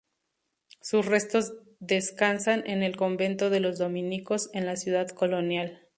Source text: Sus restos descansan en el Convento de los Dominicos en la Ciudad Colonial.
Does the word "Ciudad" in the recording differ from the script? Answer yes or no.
no